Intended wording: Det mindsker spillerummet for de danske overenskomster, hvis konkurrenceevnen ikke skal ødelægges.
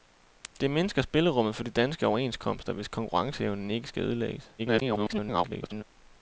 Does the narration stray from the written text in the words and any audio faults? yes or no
yes